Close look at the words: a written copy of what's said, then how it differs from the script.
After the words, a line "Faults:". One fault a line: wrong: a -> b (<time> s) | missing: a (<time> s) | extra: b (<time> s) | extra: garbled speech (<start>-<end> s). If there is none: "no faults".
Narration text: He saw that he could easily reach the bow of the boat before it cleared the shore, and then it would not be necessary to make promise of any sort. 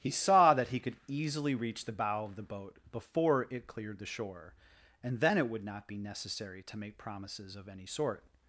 He saw that he could easily reach the bow of the boat before it cleared the shore, and then it would not be necessary to make promises of any sort.
Faults:
wrong: promise -> promises (7.0 s)